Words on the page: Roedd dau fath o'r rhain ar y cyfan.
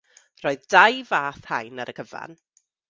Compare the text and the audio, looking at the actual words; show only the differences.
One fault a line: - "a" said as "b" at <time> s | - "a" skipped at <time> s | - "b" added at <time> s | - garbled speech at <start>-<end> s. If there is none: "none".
- "o'r" skipped at 1.4 s